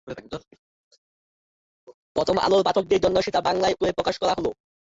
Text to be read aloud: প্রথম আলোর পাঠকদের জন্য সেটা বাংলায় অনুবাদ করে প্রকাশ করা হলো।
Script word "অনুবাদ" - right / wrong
wrong